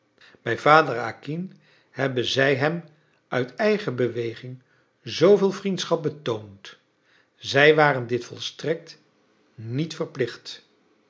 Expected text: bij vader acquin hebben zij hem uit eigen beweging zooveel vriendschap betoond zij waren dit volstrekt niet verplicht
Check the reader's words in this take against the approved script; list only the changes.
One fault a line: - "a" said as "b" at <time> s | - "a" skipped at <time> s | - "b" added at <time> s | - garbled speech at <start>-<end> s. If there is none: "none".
none